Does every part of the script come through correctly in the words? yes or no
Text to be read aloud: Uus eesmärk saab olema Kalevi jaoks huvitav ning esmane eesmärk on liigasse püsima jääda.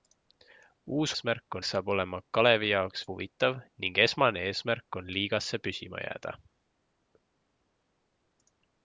yes